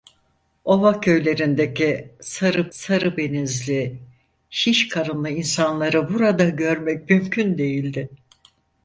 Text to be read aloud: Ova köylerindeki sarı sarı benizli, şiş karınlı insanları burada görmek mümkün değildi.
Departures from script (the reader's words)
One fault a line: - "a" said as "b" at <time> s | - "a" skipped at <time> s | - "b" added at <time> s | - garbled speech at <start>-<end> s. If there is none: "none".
none